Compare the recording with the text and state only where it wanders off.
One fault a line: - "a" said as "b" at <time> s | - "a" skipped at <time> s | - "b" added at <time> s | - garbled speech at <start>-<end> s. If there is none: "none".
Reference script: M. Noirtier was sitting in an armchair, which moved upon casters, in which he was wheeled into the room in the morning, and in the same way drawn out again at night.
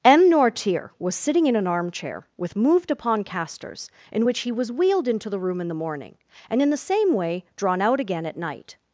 - "which" said as "with" at 2.4 s